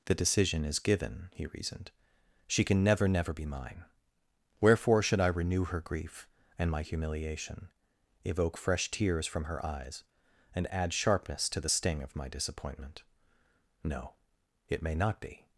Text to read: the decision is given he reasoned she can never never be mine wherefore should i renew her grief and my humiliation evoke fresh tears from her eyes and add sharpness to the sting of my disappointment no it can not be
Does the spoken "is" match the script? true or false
true